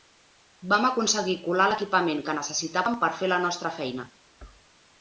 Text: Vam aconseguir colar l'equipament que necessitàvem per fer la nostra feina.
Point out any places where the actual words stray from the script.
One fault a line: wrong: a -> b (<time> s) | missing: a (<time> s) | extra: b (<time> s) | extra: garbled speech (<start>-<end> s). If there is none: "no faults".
no faults